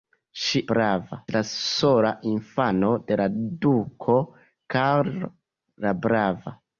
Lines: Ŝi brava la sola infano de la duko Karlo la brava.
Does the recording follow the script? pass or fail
pass